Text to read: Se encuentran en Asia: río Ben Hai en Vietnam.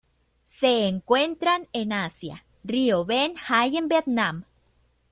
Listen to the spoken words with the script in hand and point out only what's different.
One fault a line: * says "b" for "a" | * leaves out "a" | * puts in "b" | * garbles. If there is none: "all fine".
all fine